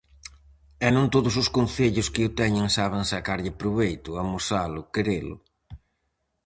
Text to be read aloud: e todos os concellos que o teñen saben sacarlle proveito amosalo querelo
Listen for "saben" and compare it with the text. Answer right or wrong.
right